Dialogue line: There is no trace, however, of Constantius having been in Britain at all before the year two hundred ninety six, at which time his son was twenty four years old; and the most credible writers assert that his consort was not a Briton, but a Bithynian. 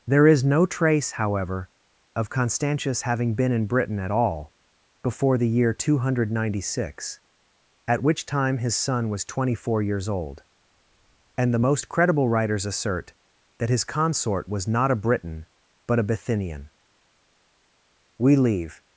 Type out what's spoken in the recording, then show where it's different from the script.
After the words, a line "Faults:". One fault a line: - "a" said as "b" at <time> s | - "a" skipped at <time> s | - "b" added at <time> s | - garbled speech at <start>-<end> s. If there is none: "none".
There is no trace, however, of Constantius having been in Britain at all before the year two hundred ninety six, at which time his son was twenty four years old; and the most credible writers assert that his consort was not a Briton, but a Bithynian. We leave
Faults:
- "We leave" added at 18.2 s